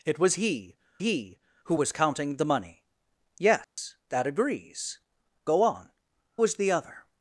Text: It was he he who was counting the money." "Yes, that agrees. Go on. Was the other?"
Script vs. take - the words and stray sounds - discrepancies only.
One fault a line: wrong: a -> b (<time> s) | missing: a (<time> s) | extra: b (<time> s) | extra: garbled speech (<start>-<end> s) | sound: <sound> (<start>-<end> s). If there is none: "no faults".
sound: dropout (3.6-3.8 s)